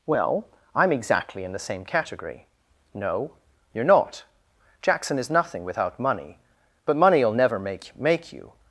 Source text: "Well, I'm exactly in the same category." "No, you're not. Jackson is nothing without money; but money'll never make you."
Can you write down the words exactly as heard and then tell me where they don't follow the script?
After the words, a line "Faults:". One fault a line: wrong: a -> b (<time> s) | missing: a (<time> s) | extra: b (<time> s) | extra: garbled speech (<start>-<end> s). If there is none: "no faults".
"Well, I'm exactly in the same category." "No, you're not. Jackson is nothing without money; but money'll never make make you."
Faults:
extra: make (8.0 s)